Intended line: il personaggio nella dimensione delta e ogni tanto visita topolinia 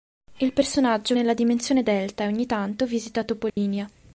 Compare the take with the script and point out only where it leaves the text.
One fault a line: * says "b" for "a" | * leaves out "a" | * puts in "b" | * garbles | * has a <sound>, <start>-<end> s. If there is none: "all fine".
* has a dropout, 3.5-3.6 s